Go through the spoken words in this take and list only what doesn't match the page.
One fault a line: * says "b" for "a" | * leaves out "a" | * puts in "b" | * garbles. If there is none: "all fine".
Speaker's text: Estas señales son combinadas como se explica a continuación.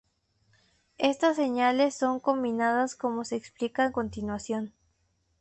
all fine